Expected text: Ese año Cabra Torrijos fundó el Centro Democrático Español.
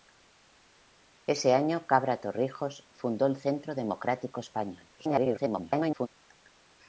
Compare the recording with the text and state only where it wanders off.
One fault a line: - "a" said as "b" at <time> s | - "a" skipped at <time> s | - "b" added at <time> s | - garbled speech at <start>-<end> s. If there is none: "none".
- garbled speech at 5.0-6.1 s